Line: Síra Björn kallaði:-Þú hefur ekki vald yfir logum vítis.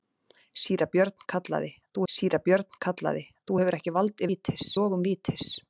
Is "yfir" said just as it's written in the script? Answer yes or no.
no